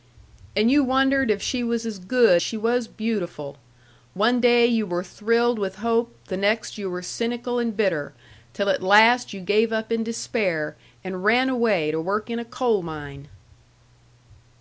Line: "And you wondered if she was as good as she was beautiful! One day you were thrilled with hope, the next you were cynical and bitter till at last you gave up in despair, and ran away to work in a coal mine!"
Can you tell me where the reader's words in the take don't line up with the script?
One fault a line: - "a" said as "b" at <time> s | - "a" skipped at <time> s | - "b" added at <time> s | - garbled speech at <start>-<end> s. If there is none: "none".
- "as" skipped at 2.4 s